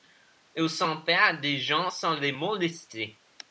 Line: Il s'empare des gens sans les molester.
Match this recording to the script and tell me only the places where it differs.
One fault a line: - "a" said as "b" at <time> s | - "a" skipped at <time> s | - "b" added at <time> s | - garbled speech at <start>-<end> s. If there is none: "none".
none